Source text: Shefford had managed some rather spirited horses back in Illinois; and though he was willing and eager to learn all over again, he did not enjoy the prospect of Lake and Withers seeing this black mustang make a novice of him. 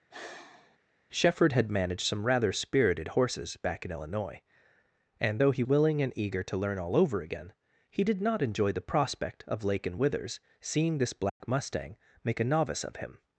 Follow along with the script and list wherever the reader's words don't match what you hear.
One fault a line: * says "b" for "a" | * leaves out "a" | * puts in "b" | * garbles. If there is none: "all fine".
* leaves out "was"